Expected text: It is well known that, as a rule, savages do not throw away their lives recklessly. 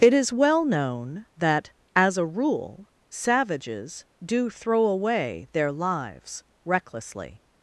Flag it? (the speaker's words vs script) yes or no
yes